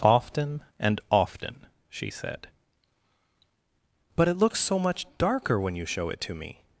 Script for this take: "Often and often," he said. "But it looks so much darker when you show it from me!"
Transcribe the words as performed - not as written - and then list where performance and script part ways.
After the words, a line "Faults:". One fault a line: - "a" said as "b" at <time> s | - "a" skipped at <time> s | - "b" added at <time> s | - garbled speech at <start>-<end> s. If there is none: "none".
"Often and often," she said. "But it looks so much darker when you show it to me!"
Faults:
- "he" said as "she" at 1.9 s
- "from" said as "to" at 6.2 s